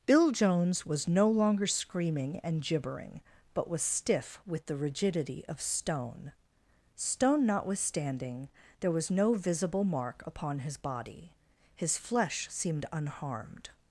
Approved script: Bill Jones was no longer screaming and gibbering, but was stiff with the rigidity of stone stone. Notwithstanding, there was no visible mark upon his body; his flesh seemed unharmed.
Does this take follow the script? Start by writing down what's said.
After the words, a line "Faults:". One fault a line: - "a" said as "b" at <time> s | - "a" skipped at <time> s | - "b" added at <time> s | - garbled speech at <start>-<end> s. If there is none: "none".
Bill Jones was no longer screaming and gibbering, but was stiff with the rigidity of stone stone. Notwithstanding, there was no visible mark upon his body; his flesh seemed unharmed.
Faults:
none